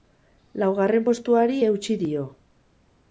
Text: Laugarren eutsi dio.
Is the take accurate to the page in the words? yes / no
no